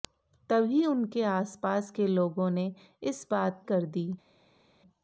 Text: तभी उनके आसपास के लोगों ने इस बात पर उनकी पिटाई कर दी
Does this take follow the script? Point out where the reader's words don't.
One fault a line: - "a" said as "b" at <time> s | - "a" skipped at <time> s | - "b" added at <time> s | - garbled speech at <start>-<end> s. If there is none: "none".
- "पर उनकी पिटाई" skipped at 3.6 s